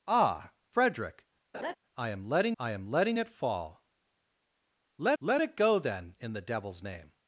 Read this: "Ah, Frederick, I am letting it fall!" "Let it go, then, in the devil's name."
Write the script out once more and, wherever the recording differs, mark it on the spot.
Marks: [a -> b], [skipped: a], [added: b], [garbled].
"Ah, Frederick, I am letting [added: I am letting] it fall!" "Let [added: let] it go, then, in the devil's name."